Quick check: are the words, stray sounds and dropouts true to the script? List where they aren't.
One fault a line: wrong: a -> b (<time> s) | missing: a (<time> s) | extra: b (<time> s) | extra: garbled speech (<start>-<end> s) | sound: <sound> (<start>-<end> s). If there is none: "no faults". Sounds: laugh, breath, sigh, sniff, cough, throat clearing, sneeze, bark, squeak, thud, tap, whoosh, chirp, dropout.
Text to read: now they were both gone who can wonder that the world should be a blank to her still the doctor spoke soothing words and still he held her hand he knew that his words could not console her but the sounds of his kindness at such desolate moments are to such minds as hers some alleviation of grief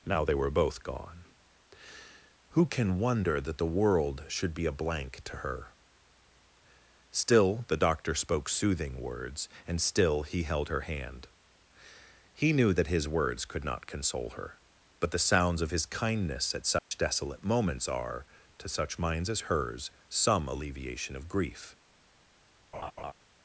sound: dropout (16.8-16.9 s)
sound: laugh (22.7-23.1 s)